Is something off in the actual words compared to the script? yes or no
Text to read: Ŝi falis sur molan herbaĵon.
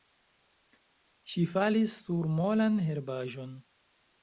no